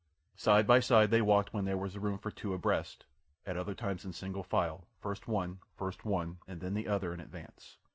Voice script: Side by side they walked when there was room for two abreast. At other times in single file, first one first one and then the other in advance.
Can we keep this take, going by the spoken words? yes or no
yes